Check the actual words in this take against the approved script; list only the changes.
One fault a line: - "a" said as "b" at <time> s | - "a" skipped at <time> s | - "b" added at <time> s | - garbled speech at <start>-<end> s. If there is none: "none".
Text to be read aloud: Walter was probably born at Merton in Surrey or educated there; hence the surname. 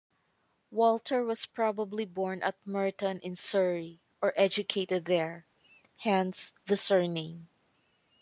none